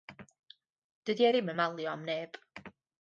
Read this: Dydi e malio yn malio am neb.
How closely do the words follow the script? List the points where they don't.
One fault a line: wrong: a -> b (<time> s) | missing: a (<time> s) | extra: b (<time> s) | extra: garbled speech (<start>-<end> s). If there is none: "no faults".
wrong: malio -> ddim (1.3 s)